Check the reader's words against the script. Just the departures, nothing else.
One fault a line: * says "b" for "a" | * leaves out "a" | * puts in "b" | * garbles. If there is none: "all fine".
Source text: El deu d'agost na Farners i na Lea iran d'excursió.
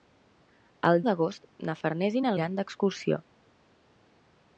* leaves out "deu"
* leaves out "Lea"